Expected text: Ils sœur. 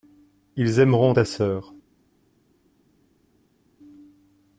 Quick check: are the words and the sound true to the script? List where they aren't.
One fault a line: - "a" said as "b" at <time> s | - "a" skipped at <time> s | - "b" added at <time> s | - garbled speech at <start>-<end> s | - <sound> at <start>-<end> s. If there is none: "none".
- "aimeront ta" added at 0.8 s